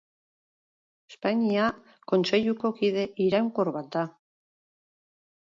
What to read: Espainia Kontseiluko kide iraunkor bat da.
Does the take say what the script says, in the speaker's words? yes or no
yes